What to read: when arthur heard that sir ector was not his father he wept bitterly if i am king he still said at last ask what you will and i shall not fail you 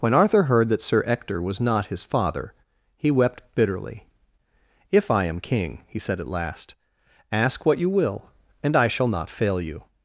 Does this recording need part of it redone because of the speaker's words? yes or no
yes